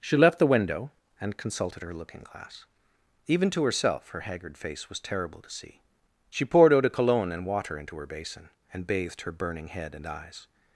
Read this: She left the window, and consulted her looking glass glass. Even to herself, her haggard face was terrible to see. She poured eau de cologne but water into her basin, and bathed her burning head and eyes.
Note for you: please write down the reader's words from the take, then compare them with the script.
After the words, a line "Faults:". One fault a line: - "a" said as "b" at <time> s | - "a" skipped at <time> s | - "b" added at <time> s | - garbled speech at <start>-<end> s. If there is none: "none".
She left the window, and consulted her looking glass. Even to herself, her haggard face was terrible to see. She poured eau de cologne and water into her basin, and bathed her burning head and eyes.
Faults:
- "glass" skipped at 2.6 s
- "but" said as "and" at 7.3 s